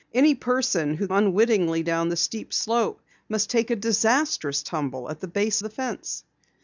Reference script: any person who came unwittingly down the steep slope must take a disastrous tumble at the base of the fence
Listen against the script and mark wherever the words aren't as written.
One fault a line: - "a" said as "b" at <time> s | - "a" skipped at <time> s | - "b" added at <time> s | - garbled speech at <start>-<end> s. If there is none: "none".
- "came" skipped at 1.1 s
- "of" skipped at 5.6 s